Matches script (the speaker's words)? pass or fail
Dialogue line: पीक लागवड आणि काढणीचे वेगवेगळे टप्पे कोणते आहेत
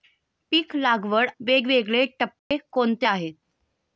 fail